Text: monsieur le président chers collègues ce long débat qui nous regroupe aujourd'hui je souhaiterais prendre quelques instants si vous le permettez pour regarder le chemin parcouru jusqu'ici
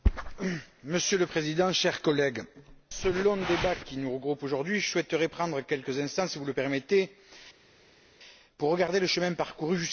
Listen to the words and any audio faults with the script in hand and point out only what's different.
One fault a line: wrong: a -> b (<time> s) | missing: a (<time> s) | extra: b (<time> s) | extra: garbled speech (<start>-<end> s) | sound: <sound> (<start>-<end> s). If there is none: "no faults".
no faults